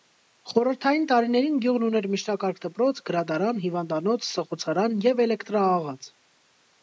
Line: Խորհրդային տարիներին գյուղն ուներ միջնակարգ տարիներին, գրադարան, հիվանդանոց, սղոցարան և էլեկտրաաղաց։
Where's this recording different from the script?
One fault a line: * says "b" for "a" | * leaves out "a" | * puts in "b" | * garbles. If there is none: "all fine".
* says "դպրոց" for "տարիներին"